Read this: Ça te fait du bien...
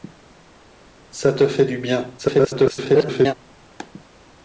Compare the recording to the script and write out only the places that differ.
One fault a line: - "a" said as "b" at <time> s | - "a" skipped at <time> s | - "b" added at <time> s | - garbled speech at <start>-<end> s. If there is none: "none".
- garbled speech at 2.2-3.3 s